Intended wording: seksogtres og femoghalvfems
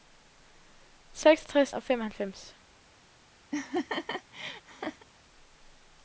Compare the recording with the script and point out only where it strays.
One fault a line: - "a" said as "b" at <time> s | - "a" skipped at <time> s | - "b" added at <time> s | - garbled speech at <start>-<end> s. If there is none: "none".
none